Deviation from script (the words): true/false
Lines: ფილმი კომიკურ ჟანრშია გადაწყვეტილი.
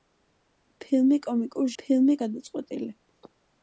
true